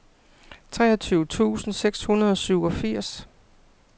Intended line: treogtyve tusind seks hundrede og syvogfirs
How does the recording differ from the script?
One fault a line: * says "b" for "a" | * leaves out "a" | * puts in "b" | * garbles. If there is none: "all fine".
all fine